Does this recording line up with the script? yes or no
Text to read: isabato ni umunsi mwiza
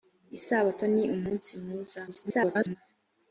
no